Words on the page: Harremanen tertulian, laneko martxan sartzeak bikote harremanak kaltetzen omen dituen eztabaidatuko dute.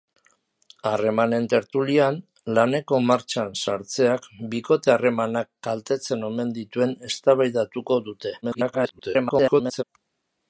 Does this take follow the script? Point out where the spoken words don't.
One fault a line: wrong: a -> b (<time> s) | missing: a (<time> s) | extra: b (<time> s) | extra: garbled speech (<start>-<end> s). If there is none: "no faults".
extra: garbled speech (8.4-9.8 s)